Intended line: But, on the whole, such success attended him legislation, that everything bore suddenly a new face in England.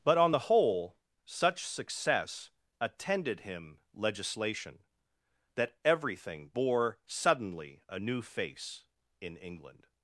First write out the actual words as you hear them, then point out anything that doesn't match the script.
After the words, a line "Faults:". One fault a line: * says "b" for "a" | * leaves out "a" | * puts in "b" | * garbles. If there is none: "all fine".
But, on the whole, such success attended him legislation, that everything bore suddenly a new face in England.
Faults:
all fine